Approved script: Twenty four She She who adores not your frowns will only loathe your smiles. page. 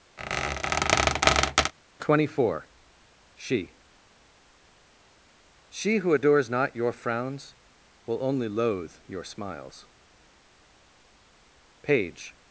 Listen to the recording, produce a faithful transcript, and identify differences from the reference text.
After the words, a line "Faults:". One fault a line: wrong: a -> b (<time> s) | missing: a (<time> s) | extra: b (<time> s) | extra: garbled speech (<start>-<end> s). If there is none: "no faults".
Twenty four She She who adores not your frowns will only loathe your smiles. page.
Faults:
no faults